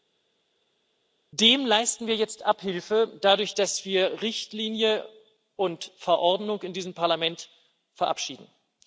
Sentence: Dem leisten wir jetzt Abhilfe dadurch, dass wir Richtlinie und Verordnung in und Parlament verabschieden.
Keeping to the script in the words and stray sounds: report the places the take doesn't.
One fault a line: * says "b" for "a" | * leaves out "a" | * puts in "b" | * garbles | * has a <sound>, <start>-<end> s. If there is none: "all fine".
* says "diesem" for "und"